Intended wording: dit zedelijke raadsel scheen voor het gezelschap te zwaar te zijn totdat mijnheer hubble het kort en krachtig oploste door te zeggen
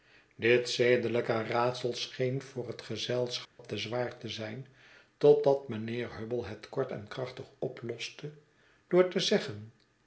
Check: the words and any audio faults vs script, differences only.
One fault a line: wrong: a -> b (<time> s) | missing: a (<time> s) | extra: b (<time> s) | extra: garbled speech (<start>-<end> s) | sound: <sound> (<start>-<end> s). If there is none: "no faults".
sound: dropout (3.5-3.6 s)